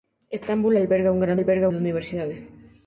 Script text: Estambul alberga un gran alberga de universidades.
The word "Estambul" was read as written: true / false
true